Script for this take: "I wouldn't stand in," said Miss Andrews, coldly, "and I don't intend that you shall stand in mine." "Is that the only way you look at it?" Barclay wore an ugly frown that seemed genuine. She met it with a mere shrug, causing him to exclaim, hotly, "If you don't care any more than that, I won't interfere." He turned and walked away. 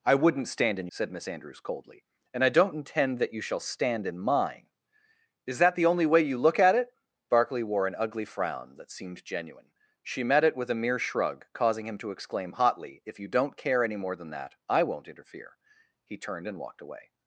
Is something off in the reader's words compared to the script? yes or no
no